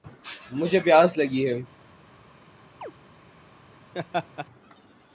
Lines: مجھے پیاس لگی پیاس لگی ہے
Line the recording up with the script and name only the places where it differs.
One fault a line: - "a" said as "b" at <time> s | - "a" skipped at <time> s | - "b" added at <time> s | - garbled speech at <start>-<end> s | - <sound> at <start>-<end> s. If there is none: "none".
- "پیاس لگی" skipped at 1.4 s
- chirp at 2.8-2.9 s
- laugh at 3.9-4.5 s